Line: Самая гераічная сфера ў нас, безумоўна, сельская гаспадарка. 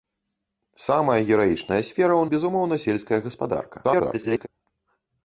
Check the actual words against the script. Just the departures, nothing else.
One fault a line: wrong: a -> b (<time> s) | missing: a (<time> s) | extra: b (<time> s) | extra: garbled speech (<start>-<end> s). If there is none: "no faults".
missing: нас (2.2 s)
extra: garbled speech (3.8-4.5 s)